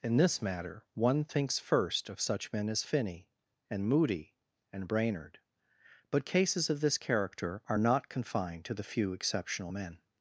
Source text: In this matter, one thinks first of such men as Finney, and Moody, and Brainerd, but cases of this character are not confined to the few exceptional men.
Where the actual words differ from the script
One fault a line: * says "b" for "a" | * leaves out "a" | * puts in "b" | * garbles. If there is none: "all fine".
all fine